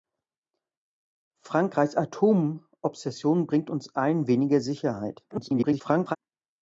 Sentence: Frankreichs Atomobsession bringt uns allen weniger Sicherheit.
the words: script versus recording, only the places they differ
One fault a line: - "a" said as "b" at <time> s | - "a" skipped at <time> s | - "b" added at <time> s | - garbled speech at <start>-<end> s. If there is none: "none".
- garbled speech at 5.3-6.2 s